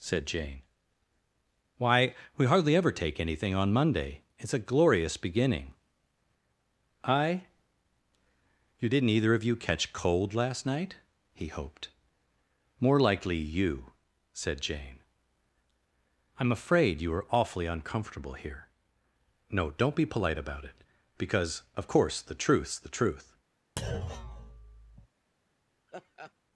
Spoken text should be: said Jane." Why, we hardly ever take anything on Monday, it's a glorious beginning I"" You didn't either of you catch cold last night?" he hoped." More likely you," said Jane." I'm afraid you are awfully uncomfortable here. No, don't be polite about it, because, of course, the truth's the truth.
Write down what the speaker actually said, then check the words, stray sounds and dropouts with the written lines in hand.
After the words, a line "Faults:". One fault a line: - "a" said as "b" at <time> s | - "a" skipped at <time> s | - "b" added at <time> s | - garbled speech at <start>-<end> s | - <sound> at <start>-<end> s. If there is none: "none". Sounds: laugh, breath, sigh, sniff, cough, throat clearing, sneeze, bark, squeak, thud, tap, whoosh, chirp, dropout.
said Jane." Why, we hardly ever take anything on Monday, it's a glorious beginning I"" You didn't either of you catch cold last night?" he hoped." More likely you," said Jane." I'm afraid you are awfully uncomfortable here. No, don't be polite about it, because, of course, the truth's the truth.
Faults:
- thud at 23.8-25.1 s
- laugh at 25.9-26.3 s